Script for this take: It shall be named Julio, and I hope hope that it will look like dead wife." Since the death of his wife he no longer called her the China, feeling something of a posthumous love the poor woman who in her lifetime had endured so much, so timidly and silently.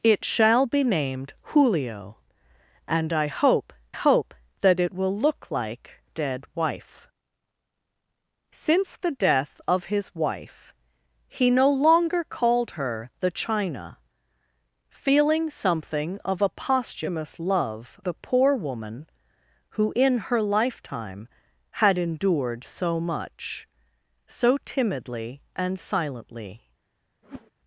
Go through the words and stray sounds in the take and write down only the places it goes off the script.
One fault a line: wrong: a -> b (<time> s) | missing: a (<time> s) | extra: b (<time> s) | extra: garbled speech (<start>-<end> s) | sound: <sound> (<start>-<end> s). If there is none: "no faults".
sound: whoosh (27.2-27.5 s)